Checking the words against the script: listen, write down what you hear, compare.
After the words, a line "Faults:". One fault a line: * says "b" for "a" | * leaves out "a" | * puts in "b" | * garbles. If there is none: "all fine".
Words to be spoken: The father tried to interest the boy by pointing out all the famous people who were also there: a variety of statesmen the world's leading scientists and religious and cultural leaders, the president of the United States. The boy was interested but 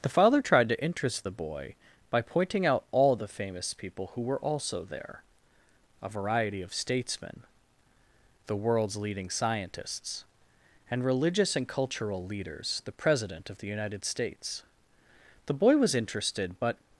The father tried to interest the boy by pointing out all the famous people who were also there: a variety of statesmen the world's leading scientists and religious and cultural leaders, the president of the United States. The boy was interested but
Faults:
all fine